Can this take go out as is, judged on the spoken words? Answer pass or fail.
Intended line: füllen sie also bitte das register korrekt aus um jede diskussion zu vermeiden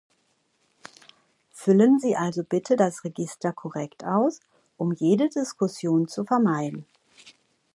pass